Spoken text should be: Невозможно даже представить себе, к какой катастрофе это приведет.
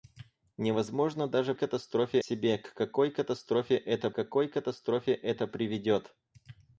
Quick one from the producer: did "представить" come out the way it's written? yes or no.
no